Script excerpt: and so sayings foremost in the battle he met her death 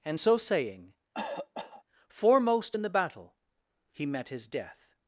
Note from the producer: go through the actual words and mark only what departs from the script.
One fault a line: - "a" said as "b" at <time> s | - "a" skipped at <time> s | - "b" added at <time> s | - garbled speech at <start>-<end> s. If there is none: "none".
- "sayings" said as "saying" at 0.4 s
- "her" said as "his" at 4.3 s